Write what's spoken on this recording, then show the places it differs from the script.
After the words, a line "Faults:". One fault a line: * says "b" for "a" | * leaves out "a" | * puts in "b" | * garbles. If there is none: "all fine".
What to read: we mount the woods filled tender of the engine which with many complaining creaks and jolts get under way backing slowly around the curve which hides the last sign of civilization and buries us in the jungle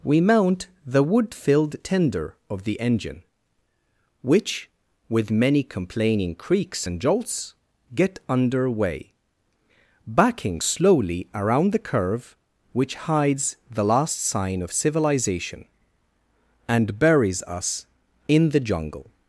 we mount the wood filled tender of the engine which with many complaining creaks and jolts get under way backing slowly around the curve which hides the last sign of civilization and buries us in the jungle
Faults:
* says "wood" for "woods"